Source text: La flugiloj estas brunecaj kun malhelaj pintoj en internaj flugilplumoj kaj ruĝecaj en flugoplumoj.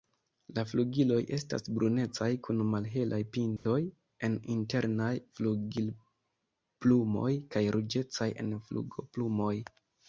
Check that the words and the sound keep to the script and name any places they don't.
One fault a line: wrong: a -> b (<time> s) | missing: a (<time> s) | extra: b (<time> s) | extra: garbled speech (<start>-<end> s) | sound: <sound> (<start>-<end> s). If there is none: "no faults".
sound: dropout (3.6-3.7 s)